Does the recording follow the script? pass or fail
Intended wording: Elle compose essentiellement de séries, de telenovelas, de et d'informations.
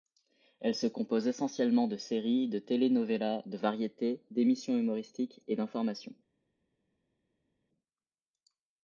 fail